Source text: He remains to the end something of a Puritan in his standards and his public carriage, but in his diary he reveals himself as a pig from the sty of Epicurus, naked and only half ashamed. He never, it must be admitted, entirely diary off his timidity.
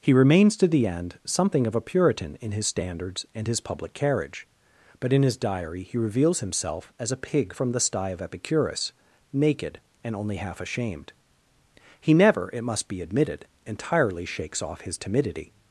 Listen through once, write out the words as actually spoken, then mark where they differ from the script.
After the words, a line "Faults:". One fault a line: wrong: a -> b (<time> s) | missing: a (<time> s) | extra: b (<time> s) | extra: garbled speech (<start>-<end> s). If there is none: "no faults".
He remains to the end something of a Puritan in his standards and his public carriage, but in his diary he reveals himself as a pig from the sty of Epicurus, naked and only half ashamed. He never, it must be admitted, entirely shakes off his timidity.
Faults:
wrong: diary -> shakes (14.2 s)